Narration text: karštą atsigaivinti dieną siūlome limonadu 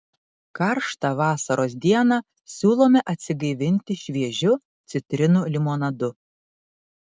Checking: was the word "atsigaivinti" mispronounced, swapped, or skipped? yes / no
yes